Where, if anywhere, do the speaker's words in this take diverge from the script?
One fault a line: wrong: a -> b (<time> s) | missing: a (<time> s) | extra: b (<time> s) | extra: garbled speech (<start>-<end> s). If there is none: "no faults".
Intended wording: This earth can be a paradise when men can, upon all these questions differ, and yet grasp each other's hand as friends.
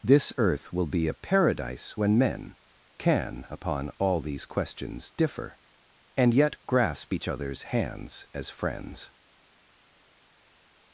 wrong: can -> will (0.7 s)
wrong: hand -> hands (7.6 s)